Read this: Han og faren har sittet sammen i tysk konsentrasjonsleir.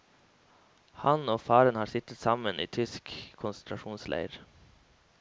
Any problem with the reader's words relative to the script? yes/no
no